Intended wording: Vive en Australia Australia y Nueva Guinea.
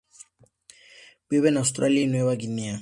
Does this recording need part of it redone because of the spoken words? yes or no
yes